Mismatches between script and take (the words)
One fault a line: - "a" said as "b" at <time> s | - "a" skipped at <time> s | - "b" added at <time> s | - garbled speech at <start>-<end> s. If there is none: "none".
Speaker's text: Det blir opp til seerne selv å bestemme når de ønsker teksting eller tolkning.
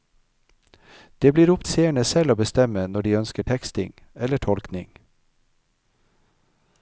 - "til" skipped at 1.6 s